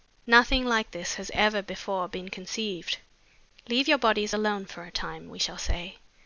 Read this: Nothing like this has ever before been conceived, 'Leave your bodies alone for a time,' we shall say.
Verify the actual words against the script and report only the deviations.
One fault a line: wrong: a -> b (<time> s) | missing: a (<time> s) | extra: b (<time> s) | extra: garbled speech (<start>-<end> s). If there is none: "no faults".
no faults